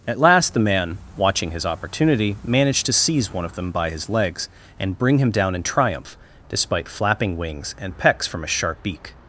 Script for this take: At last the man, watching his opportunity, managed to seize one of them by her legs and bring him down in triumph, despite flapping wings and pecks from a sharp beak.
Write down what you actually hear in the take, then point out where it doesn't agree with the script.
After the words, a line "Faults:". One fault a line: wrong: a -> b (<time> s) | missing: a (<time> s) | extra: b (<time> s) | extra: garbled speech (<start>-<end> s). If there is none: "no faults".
At last the man, watching his opportunity, managed to seize one of them by his legs and bring him down in triumph, despite flapping wings and pecks from a sharp beak.
Faults:
wrong: her -> his (3.9 s)